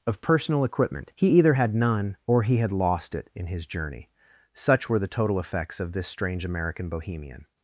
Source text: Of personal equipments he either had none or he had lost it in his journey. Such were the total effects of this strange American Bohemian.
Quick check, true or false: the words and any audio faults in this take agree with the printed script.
false